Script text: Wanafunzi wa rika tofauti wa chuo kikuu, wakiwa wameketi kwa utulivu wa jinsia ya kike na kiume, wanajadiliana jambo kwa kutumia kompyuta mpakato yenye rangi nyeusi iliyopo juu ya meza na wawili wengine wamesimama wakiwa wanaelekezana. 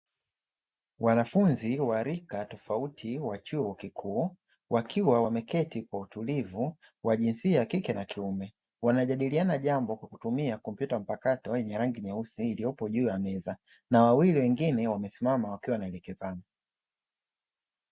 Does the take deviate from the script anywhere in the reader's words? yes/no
no